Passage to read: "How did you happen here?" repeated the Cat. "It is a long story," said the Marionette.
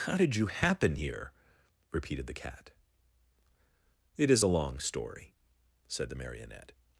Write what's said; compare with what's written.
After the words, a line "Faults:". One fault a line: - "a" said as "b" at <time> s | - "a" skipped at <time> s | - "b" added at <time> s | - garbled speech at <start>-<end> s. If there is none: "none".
"How did you happen here?" repeated the Cat. "It is a long story," said the Marionette.
Faults:
none